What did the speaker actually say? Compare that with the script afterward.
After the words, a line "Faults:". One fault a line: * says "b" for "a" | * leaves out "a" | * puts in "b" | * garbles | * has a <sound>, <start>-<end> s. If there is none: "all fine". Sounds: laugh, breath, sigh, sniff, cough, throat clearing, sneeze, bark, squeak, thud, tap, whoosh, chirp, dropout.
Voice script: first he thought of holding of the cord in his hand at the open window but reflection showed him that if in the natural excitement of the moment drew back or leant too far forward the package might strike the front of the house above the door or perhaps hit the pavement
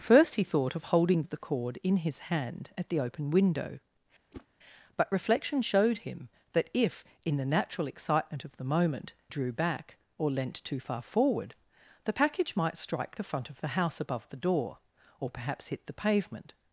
first he thought of holding of the cord in his hand at the open window but reflection showed him that if in the natural excitement of the moment drew back or leant too far forward the package might strike the front of the house above the door or perhaps hit the pavement
Faults:
* has a whoosh, 4.3-4.5 s